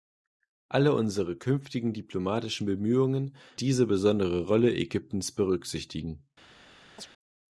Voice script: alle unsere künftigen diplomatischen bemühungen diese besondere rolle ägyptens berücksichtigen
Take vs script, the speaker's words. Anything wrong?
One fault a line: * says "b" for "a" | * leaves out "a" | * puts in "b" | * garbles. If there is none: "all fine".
all fine